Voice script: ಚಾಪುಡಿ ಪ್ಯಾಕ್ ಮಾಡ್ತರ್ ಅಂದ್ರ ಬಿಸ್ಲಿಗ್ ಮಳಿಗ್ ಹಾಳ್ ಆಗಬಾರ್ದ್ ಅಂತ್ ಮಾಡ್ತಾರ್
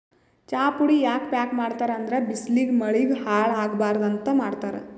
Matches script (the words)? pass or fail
fail